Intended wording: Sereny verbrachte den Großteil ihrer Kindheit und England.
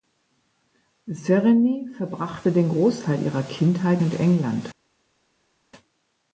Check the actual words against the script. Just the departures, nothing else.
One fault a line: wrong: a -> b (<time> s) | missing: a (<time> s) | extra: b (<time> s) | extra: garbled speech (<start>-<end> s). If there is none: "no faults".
no faults